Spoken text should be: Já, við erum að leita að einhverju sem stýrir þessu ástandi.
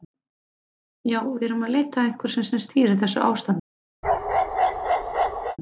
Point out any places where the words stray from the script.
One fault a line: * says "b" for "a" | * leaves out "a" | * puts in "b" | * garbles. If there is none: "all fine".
* puts in "sem"